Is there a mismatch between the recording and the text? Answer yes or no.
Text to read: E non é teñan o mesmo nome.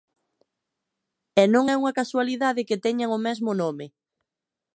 yes